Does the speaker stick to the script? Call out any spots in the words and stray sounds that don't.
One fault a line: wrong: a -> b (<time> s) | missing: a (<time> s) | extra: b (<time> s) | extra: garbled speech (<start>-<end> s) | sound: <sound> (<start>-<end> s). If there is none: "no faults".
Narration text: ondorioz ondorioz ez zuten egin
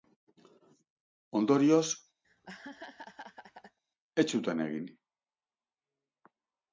missing: ondorioz (1.9 s)
sound: laugh (2.2-3.8 s)